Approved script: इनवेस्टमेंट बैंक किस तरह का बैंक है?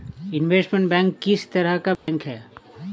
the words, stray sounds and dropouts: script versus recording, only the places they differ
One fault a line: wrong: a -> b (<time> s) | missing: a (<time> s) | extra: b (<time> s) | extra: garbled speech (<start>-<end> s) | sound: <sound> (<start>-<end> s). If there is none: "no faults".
sound: dropout (2.0-2.1 s)